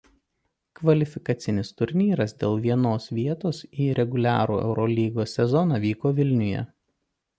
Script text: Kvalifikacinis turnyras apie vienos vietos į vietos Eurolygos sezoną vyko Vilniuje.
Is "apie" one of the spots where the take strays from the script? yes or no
yes